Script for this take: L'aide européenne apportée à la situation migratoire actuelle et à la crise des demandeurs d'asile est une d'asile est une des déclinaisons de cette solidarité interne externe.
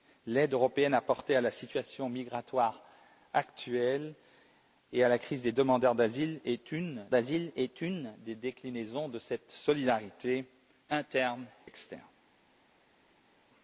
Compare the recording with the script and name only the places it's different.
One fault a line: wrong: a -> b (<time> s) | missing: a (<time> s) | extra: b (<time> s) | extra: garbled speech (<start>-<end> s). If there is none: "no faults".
no faults